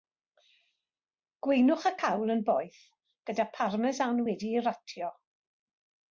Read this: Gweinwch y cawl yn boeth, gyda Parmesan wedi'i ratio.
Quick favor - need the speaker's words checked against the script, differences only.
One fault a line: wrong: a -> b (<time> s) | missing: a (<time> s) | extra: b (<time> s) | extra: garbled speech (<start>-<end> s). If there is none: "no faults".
no faults